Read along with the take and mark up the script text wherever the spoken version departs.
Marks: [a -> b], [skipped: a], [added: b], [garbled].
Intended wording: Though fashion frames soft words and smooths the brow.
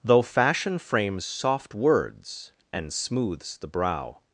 Though fashion frames soft words and smooths the brow.